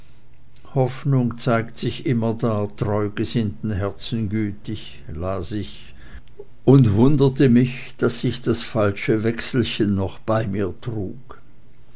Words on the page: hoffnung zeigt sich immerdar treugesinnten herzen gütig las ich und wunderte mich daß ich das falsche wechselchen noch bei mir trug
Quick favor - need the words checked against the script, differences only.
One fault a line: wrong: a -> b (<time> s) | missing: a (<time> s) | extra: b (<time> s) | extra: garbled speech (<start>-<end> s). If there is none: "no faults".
no faults